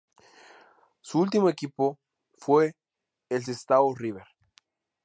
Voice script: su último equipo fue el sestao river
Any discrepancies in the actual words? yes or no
no